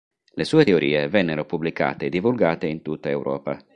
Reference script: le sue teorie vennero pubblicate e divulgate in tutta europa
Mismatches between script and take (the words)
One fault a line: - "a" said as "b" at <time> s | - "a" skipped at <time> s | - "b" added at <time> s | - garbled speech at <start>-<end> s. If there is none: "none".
none